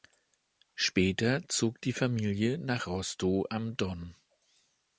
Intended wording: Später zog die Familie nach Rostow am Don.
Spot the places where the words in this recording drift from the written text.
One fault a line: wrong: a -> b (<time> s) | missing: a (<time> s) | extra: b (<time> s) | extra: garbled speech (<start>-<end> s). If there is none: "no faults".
no faults